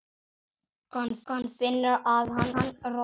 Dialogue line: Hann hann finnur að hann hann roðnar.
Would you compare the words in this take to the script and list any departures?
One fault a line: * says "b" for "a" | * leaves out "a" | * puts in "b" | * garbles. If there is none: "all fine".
all fine